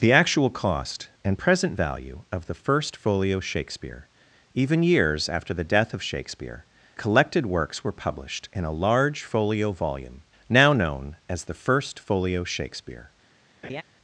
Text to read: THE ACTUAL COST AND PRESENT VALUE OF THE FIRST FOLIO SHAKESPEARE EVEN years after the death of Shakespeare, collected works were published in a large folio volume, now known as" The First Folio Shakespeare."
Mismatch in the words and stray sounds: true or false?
true